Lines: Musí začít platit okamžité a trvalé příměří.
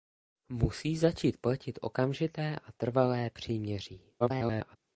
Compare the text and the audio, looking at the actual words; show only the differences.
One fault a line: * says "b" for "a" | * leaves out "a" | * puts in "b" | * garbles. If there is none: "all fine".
* garbles